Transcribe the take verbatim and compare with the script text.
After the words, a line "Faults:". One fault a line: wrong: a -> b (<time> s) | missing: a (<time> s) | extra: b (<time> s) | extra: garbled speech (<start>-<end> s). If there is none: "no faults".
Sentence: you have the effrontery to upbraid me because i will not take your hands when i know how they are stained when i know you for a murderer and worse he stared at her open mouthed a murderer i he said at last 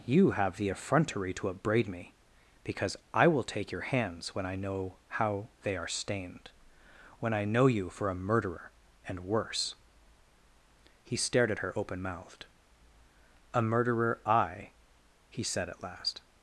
you have the effrontery to upbraid me because i will take your hands when i know how they are stained when i know you for a murderer and worse he stared at her open mouthed a murderer i he said at last
Faults:
missing: not (3.4 s)